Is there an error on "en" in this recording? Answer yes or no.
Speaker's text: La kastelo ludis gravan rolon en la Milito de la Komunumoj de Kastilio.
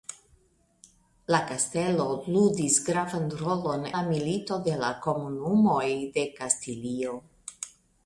yes